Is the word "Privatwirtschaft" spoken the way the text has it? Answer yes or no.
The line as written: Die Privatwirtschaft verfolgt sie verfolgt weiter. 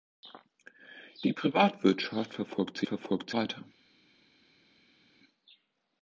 yes